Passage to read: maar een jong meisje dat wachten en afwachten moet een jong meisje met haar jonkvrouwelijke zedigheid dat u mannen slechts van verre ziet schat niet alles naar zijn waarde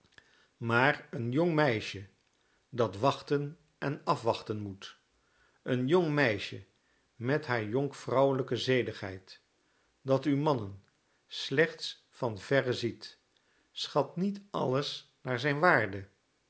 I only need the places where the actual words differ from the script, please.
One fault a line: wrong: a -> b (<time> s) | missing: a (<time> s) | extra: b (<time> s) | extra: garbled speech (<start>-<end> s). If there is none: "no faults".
no faults